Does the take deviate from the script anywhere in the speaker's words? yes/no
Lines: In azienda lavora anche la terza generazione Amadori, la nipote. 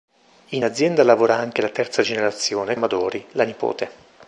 no